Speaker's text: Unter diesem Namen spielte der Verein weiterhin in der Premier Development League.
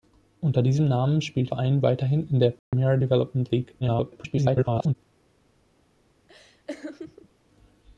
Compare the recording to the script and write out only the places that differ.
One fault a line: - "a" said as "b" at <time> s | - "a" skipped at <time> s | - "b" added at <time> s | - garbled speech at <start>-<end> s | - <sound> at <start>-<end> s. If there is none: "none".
- "der" skipped at 1.5 s
- dropout at 2.6-2.7 s
- garbled speech at 3.8-5.0 s
- laugh at 6.3-7.3 s